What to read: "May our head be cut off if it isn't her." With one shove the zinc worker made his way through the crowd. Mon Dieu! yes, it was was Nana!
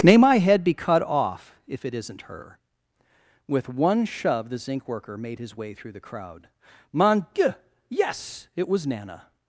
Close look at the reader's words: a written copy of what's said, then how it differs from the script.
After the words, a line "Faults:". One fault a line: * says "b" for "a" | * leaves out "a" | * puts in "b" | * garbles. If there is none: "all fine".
"May my head be cut off if it isn't her." With one shove the zinc worker made his way through the crowd. Mon Dieu! yes, it was Nana!
Faults:
* says "my" for "our"
* leaves out "was"